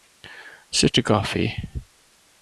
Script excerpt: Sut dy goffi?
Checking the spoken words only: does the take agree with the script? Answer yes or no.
yes